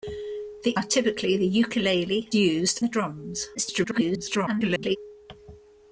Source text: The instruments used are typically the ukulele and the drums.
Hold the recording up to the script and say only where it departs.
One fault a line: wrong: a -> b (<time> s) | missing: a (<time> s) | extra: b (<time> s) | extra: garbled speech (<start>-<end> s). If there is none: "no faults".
missing: instruments used (0.7 s)
wrong: and -> used (2.3 s)
extra: garbled speech (3.5-5.0 s)